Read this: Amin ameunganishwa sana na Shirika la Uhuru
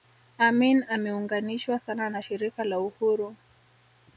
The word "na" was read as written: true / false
true